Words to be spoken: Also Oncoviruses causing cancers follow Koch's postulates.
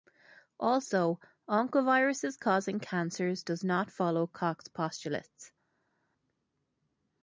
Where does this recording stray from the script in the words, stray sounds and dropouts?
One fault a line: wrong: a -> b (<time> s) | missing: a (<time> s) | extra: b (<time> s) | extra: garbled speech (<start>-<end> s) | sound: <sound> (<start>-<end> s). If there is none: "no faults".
extra: does not (3.4 s)